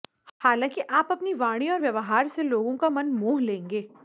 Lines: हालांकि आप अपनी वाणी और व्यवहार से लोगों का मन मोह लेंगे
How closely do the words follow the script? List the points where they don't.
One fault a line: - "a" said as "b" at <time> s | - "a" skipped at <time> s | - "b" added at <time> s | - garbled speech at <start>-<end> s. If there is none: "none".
none